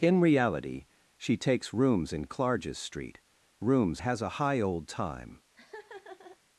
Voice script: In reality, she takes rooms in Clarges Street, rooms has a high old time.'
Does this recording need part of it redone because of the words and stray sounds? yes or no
yes